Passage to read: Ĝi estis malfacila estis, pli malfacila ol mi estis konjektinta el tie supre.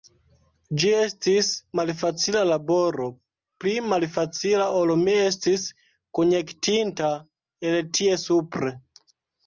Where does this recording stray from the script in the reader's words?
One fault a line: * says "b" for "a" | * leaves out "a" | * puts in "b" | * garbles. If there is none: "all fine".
* says "laboro" for "estis"